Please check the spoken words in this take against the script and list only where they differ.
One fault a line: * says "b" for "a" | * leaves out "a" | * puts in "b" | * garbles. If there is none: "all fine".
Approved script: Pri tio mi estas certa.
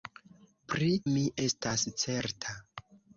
* leaves out "tio"